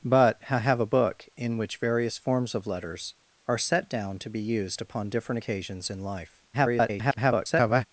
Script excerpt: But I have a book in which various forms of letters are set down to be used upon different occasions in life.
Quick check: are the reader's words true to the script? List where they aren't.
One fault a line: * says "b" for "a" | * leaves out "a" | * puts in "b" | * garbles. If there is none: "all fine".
* garbles